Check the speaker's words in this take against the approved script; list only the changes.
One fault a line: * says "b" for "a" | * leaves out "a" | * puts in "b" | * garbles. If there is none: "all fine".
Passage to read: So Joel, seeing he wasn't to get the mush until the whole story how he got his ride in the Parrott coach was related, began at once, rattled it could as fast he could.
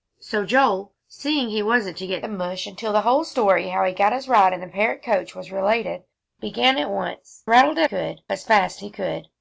all fine